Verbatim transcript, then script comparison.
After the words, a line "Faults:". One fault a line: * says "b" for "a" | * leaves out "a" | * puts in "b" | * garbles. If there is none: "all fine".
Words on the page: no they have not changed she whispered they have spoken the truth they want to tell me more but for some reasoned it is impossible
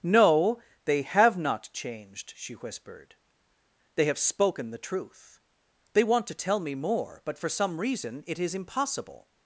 no they have not changed she whispered they have spoken the truth they want to tell me more but for some reason it is impossible
Faults:
* says "reason" for "reasoned"